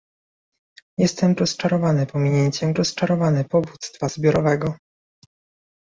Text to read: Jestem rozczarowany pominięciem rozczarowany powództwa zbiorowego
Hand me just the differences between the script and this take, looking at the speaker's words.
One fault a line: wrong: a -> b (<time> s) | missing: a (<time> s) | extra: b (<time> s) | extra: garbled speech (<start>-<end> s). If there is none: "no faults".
no faults